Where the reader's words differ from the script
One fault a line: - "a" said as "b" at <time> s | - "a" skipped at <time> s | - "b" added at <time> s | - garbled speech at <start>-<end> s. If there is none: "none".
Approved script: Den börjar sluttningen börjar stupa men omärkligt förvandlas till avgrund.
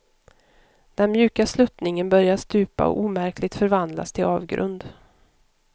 - "börjar" said as "mjuka" at 1.1 s
- "men" said as "och" at 2.9 s